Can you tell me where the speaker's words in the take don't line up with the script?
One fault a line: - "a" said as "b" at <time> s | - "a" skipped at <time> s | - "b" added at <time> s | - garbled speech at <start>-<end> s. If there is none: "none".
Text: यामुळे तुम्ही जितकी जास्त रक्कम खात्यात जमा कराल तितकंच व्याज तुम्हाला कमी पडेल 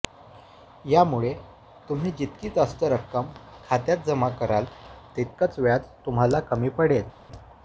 none